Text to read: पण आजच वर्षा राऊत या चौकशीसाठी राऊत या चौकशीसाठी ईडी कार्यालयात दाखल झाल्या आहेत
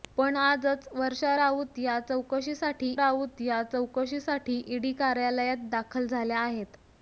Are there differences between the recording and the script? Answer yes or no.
no